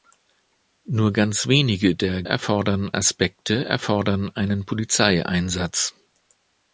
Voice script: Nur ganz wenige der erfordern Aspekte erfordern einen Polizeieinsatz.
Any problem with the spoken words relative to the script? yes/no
no